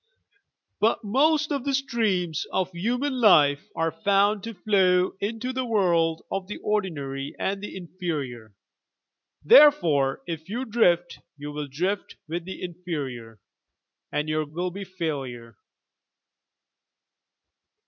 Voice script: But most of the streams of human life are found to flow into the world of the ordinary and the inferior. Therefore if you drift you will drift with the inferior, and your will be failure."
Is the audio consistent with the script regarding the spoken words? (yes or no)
yes